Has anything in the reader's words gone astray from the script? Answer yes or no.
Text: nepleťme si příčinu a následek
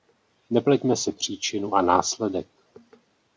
no